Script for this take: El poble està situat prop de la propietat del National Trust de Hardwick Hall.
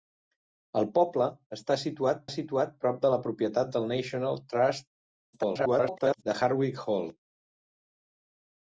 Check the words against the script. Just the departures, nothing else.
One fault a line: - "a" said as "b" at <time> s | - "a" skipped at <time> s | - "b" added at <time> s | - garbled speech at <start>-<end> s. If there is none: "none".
- "situat" added at 2.3 s
- garbled speech at 5.3-6.2 s